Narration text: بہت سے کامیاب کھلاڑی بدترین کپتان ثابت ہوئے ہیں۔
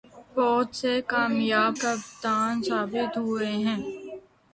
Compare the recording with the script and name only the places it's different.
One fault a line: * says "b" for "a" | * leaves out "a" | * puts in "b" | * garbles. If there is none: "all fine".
* leaves out "کھلاڑی بدترین"